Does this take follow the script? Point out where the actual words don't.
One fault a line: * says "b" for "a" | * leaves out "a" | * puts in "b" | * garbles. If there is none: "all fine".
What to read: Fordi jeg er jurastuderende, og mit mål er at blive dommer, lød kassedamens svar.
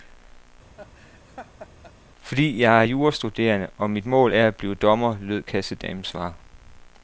all fine